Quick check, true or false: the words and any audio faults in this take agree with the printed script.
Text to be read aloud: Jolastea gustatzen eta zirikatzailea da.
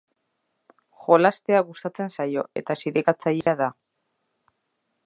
false